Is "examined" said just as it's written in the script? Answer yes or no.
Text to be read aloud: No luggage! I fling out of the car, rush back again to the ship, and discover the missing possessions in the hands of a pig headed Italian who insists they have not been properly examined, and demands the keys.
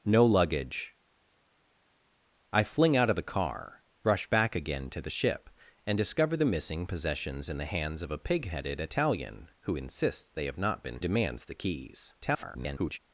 no